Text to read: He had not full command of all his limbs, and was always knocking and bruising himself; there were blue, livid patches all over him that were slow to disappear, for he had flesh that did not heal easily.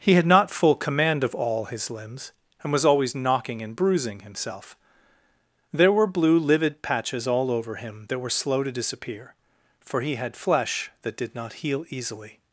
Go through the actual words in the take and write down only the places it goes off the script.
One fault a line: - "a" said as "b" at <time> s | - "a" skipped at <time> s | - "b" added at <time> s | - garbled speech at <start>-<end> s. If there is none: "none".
none